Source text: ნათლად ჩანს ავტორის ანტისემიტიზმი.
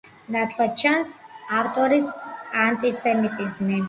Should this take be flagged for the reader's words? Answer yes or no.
no